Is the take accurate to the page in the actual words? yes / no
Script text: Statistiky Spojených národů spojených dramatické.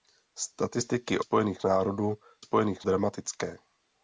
yes